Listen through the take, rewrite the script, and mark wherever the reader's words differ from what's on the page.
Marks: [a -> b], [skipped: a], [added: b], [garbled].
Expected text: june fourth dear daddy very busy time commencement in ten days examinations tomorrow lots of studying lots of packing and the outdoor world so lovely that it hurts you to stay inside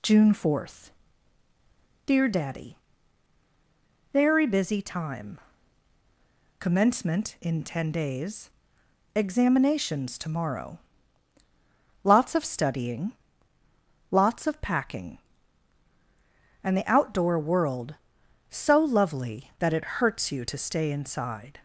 june fourth dear daddy very busy time commencement in ten days examinations tomorrow lots of studying lots of packing and the outdoor world so lovely that it hurts you to stay inside